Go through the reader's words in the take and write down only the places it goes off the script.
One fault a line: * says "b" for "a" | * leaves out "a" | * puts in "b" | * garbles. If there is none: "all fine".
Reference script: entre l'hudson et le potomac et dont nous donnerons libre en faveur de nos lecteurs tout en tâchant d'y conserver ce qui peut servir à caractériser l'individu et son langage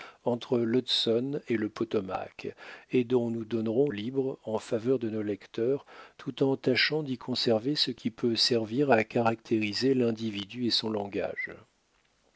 all fine